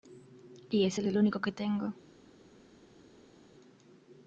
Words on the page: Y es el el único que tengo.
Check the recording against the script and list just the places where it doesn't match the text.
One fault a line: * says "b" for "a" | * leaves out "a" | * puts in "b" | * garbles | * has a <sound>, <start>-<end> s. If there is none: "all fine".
all fine